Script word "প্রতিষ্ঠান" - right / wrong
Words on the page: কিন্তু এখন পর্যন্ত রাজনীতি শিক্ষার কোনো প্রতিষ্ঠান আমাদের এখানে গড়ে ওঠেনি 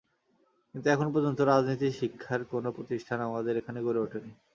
right